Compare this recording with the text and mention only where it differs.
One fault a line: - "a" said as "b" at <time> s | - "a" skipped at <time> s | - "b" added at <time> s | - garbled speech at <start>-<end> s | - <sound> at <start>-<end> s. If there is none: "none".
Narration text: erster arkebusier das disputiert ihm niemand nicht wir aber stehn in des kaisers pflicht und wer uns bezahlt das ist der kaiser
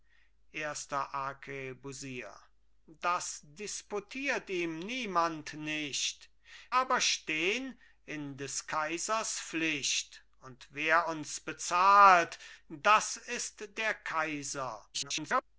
- "wir" skipped at 6.3 s
- garbled speech at 14.9-15.4 s